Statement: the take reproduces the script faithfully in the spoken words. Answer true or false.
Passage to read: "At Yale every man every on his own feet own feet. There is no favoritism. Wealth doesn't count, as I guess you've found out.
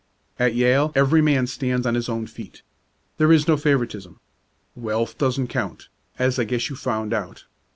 false